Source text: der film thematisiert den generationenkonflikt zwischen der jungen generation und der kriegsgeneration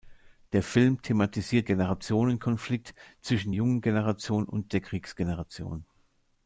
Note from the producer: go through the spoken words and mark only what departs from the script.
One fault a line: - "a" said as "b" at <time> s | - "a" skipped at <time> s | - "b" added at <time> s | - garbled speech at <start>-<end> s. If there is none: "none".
- "den" skipped at 1.7 s
- "der" skipped at 3.5 s